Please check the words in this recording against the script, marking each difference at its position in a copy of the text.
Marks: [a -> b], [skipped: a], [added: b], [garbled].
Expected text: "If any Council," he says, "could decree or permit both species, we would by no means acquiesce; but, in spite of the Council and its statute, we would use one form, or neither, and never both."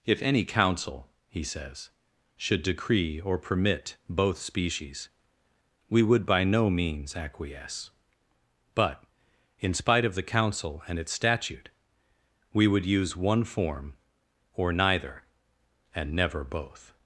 "If any Council," he says, ["could -> should] decree or permit both species, we would by no means acquiesce; but, in spite of the Council and its statute, we would use one form, or neither, and never both."